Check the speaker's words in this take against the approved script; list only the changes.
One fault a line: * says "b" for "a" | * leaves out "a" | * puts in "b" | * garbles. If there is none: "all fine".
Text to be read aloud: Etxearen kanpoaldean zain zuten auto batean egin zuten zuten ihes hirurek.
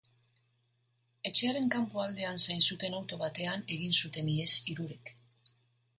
* leaves out "zuten"